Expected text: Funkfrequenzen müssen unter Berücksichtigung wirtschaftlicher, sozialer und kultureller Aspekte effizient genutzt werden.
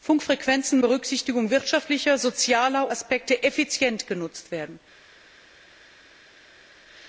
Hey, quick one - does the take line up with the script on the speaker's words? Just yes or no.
no